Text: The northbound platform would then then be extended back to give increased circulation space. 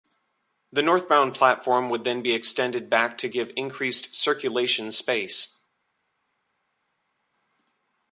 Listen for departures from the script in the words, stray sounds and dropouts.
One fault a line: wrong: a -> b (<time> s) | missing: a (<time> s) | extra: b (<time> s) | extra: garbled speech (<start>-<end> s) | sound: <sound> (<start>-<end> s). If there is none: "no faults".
missing: then (2.2 s)